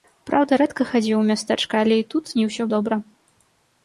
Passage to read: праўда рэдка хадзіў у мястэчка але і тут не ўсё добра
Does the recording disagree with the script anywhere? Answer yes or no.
no